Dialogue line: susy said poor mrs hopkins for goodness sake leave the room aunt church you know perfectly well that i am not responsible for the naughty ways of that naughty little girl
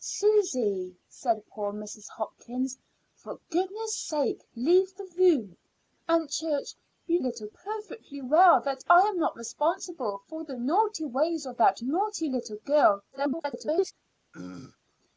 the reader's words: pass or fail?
fail